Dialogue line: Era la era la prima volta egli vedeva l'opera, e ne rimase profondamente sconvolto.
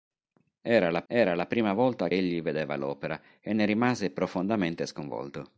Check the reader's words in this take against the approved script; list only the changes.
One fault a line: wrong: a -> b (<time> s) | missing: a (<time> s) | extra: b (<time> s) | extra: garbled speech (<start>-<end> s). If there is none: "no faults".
no faults